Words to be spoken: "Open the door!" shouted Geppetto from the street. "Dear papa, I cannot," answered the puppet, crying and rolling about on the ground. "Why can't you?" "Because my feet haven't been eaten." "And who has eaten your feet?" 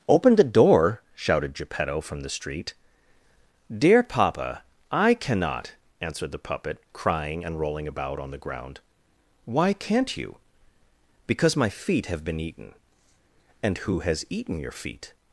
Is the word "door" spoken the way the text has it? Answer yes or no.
yes